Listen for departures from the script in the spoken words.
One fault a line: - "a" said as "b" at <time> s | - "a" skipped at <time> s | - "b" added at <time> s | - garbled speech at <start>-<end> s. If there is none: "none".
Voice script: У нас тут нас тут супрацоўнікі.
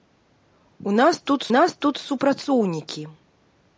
none